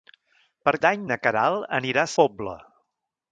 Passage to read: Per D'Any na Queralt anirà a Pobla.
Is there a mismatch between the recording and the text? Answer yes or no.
no